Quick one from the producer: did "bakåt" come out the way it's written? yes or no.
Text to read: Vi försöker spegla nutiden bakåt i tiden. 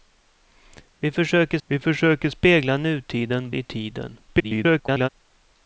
no